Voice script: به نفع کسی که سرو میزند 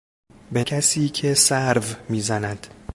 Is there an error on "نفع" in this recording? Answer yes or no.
yes